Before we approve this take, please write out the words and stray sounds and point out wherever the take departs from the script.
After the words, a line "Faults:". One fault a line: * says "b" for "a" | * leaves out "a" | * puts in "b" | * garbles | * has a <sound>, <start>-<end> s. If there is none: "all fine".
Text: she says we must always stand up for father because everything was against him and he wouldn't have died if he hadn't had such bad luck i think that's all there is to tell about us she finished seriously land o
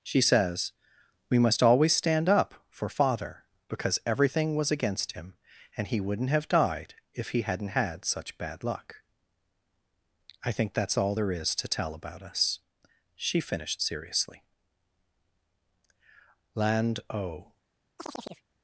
she says we must always stand up for father because everything was against him and he wouldn't have died if he hadn't had such bad luck i think that's all there is to tell about us she finished seriously land o
Faults:
* has a chirp, 18.0-18.4 s